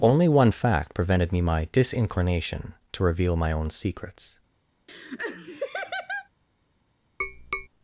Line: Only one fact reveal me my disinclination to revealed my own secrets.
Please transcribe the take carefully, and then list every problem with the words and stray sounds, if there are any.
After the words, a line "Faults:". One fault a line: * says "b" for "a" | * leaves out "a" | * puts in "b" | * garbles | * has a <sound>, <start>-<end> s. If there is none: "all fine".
Only one fact prevented me my disinclination to reveal my own secrets.
Faults:
* says "prevented" for "reveal"
* says "reveal" for "revealed"
* has a laugh, 4.9-6.3 s
* has a tap, 7.2-7.7 s